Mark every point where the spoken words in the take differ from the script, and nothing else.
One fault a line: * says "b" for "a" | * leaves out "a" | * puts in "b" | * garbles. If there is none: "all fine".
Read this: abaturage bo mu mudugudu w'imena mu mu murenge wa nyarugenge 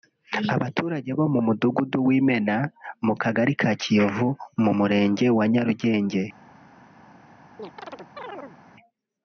* puts in "kagari ka kiyovu"